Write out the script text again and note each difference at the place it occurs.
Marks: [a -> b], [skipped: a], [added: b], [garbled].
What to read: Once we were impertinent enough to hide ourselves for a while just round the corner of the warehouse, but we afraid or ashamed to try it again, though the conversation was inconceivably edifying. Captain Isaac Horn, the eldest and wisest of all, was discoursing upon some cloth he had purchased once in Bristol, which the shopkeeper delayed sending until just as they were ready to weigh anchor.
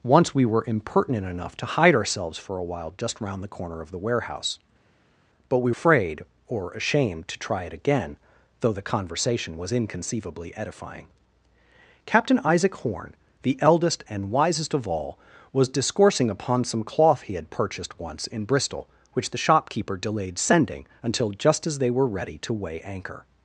Once we were impertinent enough to hide ourselves for a while just round the corner of the warehouse, but we afraid or ashamed to try it again, though the conversation was inconceivably edifying. Captain Isaac Horn, the eldest and wisest of all, was discoursing upon some cloth he had purchased once in Bristol, which the shopkeeper delayed sending until just as they were ready to weigh anchor.